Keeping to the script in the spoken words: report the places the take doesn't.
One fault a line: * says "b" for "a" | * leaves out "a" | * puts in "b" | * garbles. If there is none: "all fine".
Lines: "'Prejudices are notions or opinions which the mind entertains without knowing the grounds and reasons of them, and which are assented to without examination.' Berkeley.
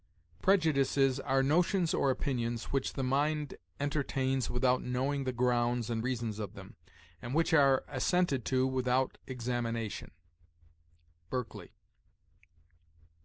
all fine